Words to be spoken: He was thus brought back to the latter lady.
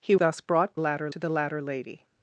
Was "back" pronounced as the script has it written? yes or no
no